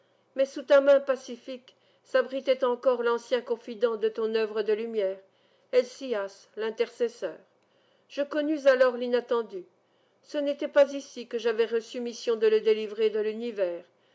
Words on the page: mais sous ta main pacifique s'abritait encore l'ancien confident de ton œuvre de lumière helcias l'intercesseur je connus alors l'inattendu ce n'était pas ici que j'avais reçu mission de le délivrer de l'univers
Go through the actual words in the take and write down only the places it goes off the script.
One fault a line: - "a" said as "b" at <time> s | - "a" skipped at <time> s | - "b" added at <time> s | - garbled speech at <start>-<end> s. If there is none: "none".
none